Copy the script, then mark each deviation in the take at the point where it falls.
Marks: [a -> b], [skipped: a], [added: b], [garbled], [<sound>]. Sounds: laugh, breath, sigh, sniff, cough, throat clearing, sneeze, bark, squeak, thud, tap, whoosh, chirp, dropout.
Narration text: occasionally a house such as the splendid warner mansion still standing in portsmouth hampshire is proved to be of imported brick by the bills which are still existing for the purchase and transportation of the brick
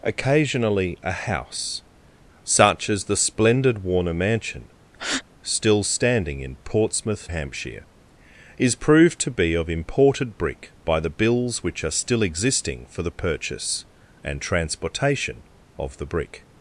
occasionally a house such as the splendid warner mansion [breath] still standing in portsmouth hampshire is proved to be of imported brick by the bills which are still existing for the purchase and transportation of the brick